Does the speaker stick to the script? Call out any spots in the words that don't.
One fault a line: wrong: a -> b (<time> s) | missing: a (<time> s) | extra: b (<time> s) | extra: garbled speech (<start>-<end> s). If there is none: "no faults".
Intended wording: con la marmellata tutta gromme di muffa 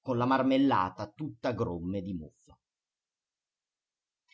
no faults